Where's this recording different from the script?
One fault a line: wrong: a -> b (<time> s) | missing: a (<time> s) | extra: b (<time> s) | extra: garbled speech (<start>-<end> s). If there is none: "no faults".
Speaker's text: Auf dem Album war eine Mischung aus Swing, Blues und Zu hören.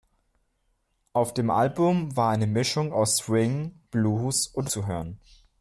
no faults